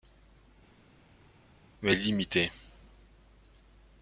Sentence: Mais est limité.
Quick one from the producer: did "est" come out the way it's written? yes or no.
yes